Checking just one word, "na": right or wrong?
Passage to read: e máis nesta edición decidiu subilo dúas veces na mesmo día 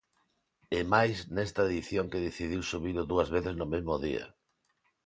wrong